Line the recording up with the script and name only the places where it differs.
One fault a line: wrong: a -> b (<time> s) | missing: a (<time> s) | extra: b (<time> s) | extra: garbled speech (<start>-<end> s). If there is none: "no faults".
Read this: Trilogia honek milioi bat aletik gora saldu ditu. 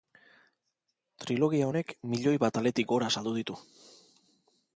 no faults